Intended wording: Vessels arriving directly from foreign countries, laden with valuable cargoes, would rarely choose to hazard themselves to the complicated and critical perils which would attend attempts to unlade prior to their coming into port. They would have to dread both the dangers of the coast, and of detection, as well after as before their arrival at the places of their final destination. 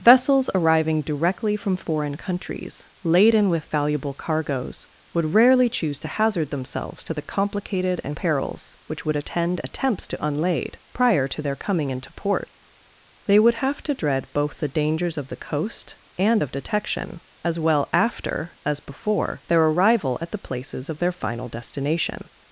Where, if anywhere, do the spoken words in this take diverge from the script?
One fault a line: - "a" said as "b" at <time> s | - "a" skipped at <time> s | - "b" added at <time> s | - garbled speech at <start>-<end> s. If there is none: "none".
- "critical" skipped at 8.2 s